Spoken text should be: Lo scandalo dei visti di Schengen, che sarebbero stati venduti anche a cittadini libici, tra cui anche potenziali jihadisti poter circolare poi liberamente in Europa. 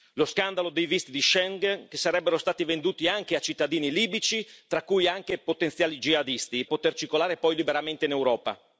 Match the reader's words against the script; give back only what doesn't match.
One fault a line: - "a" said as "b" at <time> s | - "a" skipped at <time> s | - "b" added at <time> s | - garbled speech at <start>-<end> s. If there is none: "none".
none